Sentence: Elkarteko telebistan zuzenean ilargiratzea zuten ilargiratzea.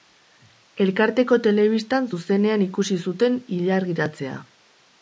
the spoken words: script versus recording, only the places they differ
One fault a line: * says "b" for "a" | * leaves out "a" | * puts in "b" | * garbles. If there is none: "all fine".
* says "ikusi" for "ilargiratzea"